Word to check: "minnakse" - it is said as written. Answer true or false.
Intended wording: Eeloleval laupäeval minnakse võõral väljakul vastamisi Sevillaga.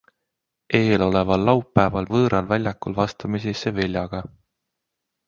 false